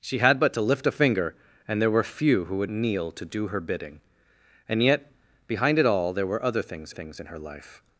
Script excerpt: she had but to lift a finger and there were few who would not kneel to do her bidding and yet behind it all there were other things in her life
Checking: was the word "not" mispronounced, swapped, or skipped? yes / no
yes